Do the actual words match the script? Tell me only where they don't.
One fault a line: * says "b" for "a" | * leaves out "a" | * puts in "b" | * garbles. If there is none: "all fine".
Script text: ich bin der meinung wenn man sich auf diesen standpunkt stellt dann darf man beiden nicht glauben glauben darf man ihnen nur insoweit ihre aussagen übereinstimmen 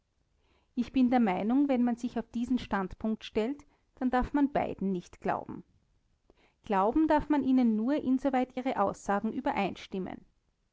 all fine